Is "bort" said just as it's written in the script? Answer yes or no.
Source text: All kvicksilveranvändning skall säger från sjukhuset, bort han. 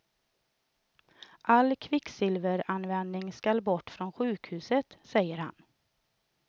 no